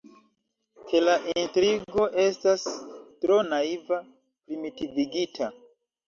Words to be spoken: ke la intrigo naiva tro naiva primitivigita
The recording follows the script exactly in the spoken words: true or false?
false